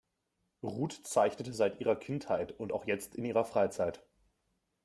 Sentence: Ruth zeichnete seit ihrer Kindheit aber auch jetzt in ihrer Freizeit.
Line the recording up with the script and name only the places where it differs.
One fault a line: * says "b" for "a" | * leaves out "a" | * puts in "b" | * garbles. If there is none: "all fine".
* says "und" for "aber"